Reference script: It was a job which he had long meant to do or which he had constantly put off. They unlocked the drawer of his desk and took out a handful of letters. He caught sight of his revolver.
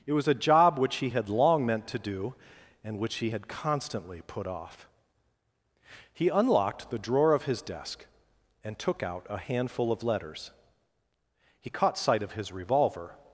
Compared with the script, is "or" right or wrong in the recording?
wrong